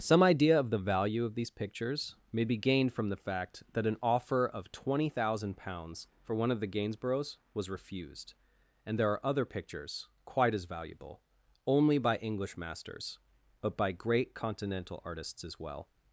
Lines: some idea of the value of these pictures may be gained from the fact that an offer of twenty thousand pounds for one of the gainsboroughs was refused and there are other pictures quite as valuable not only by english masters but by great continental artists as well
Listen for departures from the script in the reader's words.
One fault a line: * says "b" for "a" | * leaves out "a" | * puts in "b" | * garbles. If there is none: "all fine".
* leaves out "not"